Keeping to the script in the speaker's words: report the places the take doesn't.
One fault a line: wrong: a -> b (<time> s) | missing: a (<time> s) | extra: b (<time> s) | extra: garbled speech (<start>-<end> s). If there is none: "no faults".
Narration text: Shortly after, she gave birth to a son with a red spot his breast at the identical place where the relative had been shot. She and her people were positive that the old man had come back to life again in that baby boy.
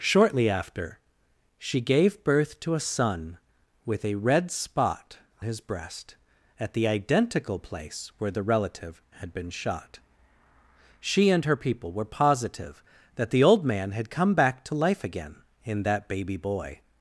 no faults